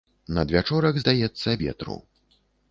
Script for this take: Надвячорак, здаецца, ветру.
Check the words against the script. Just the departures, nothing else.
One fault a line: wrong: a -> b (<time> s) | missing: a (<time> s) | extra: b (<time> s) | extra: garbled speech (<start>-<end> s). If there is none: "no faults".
no faults